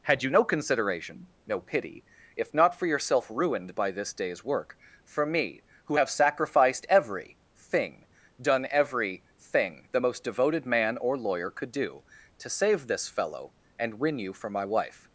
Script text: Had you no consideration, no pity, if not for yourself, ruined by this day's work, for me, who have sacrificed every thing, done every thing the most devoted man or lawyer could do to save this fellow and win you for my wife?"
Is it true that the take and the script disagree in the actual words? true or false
false